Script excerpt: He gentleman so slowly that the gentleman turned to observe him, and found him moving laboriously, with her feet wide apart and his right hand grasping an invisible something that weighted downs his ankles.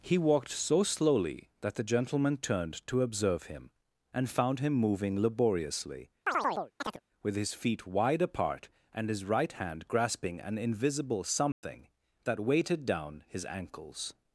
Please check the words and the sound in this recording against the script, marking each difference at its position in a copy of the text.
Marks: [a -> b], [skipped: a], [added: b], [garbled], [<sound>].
He [gentleman -> walked] so slowly that the gentleman turned to observe him, and found him moving laboriously, [chirp] with [her -> his] feet wide apart and his right hand grasping an invisible something [dropout] that weighted [downs -> down] his ankles.